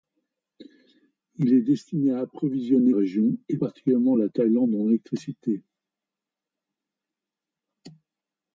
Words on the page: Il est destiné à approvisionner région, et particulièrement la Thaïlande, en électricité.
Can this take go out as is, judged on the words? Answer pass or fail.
pass